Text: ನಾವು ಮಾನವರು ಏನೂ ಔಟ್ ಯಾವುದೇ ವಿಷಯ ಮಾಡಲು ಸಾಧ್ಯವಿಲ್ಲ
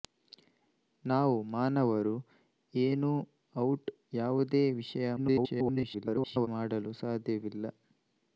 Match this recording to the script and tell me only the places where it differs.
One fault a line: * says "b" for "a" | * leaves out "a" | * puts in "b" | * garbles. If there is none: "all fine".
* garbles